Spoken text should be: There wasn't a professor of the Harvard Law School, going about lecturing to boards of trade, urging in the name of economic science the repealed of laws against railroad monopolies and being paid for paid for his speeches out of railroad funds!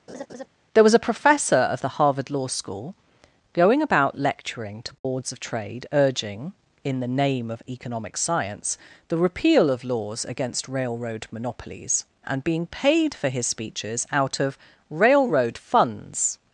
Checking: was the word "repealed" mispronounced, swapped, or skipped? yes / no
yes